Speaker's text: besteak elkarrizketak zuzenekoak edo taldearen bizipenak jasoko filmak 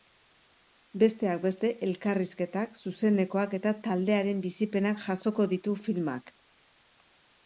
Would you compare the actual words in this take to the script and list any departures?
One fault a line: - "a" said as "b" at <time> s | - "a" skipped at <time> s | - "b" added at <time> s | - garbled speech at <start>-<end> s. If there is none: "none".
- "beste" added at 1.4 s
- "edo" said as "eta" at 3.6 s
- "ditu" added at 5.5 s